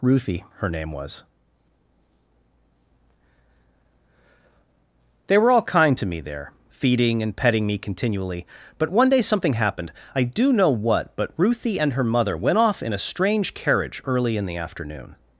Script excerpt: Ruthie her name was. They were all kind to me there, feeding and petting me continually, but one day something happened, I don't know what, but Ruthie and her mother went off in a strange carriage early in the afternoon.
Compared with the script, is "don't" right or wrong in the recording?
wrong